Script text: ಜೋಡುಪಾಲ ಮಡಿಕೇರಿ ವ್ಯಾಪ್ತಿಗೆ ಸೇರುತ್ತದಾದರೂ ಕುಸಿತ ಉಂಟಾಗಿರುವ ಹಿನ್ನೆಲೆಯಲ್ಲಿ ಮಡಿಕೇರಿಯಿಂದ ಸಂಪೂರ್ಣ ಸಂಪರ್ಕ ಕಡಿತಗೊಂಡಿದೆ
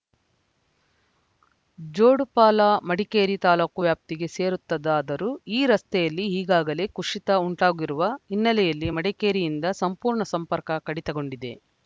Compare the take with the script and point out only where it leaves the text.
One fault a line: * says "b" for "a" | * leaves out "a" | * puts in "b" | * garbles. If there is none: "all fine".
* puts in "ತಾಲೂಕು"
* puts in "ಈ ರಸ್ತೆಯಲ್ಲಿ ಈಗಾಗಲೇ"